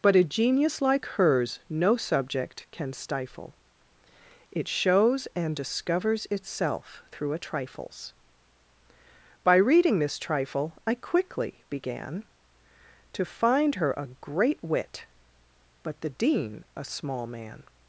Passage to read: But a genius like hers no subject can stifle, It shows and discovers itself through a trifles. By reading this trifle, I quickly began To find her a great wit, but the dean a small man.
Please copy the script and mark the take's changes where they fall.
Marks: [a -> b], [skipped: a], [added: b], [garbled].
But a genius like hers no subject can stifle, It shows and discovers itself through a trifles. By reading this trifle, I quickly began To find her a great wit, but the dean a small man.